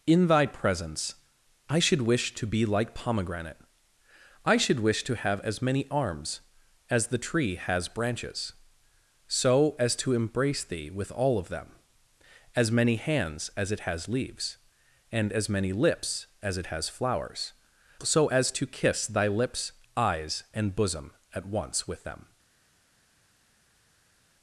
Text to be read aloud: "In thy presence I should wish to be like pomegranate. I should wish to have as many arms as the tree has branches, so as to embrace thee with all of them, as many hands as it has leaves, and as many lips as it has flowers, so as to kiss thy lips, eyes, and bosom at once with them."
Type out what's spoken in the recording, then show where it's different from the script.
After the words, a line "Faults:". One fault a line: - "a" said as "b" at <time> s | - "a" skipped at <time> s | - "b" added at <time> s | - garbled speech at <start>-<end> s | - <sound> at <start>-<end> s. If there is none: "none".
"In thy presence I should wish to be like pomegranate. I should wish to have as many arms as the tree has branches, so as to embrace thee with all of them, as many hands as it has leaves, and as many lips as it has flowers, so as to kiss thy lips, eyes, and bosom at once with them."
Faults:
none